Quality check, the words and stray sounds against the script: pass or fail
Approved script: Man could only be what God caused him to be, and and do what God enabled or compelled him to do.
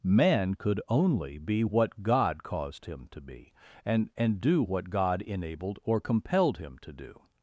pass